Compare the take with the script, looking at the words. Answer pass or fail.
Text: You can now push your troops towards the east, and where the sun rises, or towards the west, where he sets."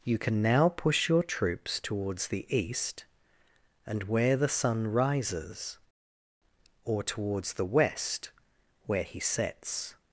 pass